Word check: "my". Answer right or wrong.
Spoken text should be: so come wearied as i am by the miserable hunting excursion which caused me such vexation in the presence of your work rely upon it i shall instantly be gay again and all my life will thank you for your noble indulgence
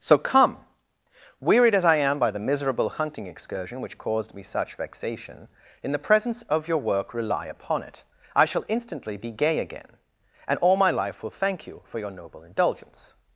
right